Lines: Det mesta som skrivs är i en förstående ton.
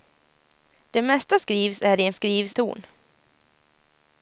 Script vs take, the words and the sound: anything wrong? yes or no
yes